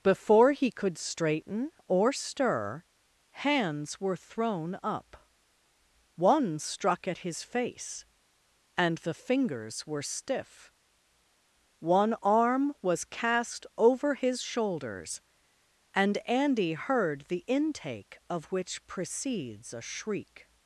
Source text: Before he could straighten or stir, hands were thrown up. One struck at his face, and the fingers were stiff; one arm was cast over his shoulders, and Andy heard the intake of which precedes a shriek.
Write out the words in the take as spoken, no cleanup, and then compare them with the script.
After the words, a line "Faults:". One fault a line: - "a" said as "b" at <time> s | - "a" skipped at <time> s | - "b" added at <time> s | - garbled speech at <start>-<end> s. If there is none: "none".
Before he could straighten or stir, hands were thrown up. One struck at his face, and the fingers were stiff; one arm was cast over his shoulders, and Andy heard the intake of which precedes a shriek.
Faults:
none